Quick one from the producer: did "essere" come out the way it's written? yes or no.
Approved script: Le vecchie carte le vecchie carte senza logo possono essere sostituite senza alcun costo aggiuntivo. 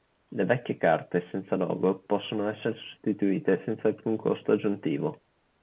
yes